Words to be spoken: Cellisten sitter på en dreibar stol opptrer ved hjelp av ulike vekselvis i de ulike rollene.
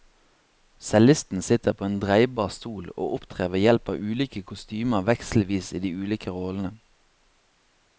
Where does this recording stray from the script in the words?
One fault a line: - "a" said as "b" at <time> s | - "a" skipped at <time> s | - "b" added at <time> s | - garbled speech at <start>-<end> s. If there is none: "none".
- "og" added at 3.0 s
- "kostymer" added at 4.5 s